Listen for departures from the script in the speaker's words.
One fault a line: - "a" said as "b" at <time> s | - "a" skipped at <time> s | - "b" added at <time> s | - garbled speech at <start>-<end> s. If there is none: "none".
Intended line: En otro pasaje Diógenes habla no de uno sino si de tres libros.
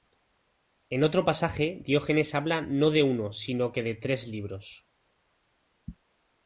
- "si" said as "que" at 3.7 s